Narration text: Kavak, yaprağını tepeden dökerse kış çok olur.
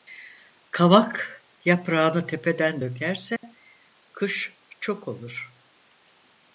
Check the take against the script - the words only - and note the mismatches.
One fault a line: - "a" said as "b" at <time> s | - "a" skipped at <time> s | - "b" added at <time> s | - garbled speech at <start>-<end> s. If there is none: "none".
none